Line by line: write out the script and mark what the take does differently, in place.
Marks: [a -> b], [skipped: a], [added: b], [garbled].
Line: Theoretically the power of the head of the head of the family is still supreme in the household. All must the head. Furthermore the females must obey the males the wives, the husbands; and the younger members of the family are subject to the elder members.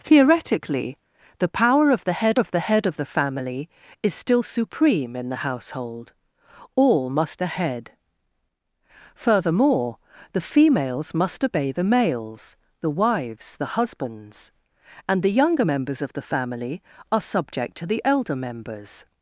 Theoretically the power of the head of the head of the family is still supreme in the household. All must the head. Furthermore the females must obey the males the wives, the husbands; and the younger members of the family are subject to the elder members.